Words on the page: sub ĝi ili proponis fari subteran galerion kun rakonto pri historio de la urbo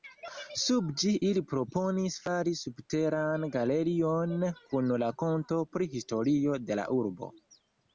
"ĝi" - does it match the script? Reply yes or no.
yes